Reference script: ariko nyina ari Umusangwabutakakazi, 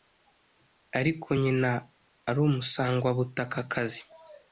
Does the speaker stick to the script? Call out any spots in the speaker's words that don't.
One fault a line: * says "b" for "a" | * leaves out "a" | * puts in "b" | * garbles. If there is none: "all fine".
all fine